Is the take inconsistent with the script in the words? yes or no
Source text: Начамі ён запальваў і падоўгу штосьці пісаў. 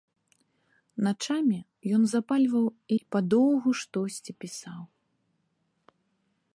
no